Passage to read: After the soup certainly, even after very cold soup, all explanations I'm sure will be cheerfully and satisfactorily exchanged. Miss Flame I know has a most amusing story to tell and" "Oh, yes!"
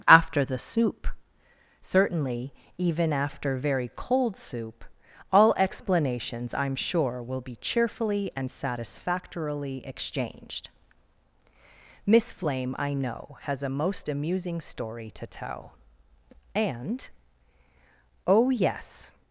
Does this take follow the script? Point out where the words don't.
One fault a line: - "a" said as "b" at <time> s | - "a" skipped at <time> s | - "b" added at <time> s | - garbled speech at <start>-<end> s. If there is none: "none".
none